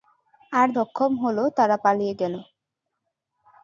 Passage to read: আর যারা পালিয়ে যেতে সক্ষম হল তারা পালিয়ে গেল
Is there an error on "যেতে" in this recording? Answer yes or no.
yes